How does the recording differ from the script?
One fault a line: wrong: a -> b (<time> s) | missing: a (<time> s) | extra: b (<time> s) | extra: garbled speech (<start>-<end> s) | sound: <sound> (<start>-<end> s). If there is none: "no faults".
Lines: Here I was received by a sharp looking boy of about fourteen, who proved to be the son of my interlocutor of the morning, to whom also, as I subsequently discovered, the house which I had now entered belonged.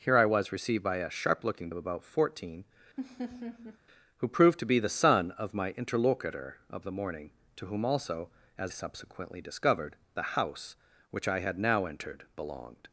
missing: boy (1.7 s)
sound: laugh (3.0-3.8 s)
missing: I (8.7 s)